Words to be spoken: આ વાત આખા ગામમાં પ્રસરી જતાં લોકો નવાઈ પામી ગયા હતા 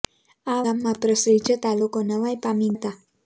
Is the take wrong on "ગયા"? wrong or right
wrong